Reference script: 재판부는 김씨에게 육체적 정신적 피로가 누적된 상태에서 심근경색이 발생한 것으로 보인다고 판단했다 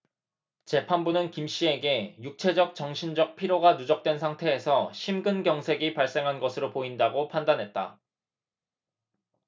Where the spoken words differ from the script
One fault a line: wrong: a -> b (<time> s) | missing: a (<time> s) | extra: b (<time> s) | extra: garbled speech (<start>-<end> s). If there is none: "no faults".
no faults